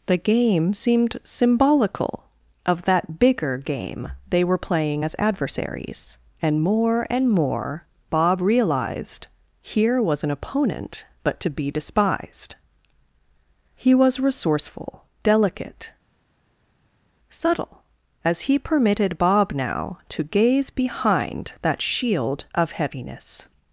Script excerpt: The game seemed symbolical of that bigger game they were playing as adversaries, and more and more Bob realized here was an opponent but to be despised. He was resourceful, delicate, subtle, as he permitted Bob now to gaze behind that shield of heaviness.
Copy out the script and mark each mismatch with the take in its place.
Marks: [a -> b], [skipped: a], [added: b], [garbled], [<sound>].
The game seemed symbolical of that bigger game they were playing as adversaries, and more and more Bob realized here was an opponent but to be despised. He was resourceful, delicate, subtle, as he permitted Bob now to gaze behind that shield of heaviness.